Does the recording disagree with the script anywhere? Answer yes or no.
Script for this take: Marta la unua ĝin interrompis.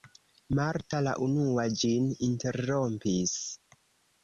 no